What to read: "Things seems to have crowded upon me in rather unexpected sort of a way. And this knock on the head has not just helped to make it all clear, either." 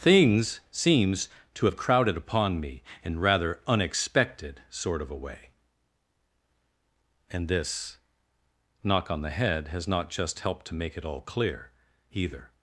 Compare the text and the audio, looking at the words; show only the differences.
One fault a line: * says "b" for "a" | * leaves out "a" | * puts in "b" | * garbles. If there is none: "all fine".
all fine